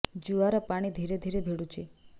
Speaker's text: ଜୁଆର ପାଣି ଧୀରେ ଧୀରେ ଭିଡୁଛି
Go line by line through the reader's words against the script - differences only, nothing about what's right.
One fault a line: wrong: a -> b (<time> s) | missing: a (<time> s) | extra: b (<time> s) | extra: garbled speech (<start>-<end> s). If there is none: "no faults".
no faults